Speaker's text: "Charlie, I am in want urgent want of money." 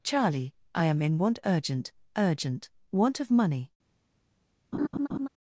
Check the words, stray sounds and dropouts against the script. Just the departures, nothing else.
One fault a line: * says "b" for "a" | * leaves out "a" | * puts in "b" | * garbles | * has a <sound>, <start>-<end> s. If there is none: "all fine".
* puts in "urgent"
* has a laugh, 4.7-5.3 s